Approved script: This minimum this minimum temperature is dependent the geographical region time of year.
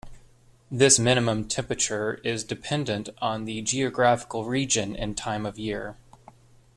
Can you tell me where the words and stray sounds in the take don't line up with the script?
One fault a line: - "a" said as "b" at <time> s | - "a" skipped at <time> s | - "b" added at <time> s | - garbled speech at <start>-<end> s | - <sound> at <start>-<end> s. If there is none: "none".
- "this minimum" skipped at 1.5 s
- "on" added at 3.2 s
- "and" added at 4.9 s